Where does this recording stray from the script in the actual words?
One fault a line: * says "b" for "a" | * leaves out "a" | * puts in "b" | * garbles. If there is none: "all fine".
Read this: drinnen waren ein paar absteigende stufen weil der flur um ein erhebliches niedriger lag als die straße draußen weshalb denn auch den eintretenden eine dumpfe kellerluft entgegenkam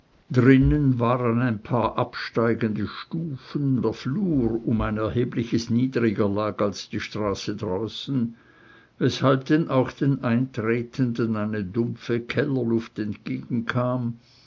* leaves out "weil"